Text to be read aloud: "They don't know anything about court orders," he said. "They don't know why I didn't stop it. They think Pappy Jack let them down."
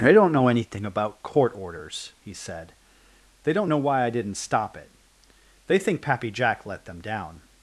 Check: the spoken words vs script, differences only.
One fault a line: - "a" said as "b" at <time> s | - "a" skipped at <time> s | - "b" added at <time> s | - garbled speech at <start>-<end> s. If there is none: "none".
none